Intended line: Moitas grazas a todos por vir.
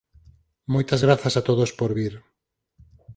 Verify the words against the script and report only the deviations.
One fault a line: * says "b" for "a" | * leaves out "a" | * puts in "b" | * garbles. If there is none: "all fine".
all fine